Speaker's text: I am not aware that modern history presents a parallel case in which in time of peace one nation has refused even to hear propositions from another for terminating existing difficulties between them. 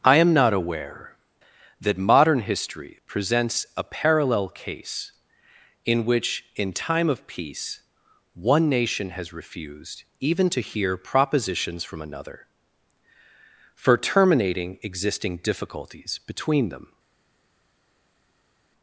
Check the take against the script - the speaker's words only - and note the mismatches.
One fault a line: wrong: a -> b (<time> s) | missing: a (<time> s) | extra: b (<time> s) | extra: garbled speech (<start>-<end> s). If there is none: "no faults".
no faults